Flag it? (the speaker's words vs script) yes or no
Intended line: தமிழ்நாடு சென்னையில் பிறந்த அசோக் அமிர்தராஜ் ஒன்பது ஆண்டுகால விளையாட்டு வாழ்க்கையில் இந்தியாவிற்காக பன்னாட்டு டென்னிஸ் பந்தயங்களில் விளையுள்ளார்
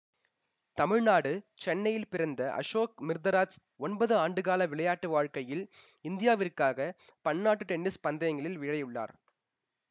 no